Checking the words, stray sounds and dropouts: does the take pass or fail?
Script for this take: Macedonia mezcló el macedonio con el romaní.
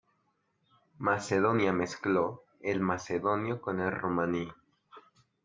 pass